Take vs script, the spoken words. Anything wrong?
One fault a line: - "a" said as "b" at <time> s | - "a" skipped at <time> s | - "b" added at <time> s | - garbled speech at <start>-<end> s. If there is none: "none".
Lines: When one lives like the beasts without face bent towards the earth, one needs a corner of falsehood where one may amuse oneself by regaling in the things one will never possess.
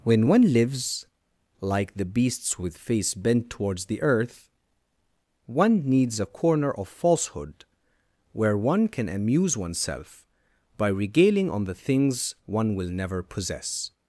- "without" said as "with" at 2.6 s
- "may" said as "can" at 8.9 s
- "in" said as "on" at 11.5 s